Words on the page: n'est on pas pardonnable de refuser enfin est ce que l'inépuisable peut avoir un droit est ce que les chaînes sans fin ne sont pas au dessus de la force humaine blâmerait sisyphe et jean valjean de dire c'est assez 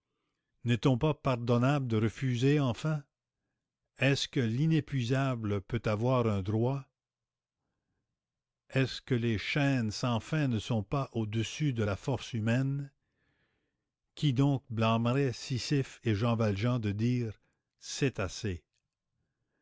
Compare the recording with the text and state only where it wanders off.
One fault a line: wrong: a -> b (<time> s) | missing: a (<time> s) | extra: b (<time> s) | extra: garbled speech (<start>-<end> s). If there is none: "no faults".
extra: qui donc (14.1 s)